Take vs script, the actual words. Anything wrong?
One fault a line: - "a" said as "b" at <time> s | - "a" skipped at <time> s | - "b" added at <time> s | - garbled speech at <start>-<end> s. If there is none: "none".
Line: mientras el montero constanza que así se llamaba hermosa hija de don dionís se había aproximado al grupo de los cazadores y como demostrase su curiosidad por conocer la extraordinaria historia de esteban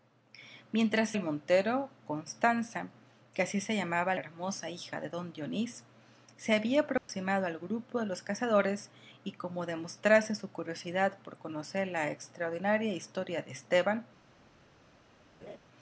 none